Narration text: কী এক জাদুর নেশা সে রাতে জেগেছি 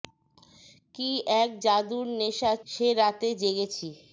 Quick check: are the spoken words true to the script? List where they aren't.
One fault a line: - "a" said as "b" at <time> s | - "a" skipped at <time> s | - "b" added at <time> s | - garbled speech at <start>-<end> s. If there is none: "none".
none